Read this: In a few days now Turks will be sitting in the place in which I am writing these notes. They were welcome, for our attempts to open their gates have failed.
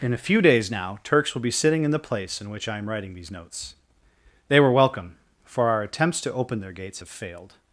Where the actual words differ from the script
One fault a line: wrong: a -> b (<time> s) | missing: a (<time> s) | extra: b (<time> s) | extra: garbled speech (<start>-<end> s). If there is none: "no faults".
no faults